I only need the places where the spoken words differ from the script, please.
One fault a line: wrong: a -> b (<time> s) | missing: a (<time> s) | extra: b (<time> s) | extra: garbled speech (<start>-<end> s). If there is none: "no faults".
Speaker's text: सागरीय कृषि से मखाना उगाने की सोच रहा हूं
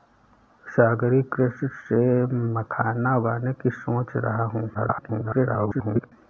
extra: garbled speech (4.7-6.1 s)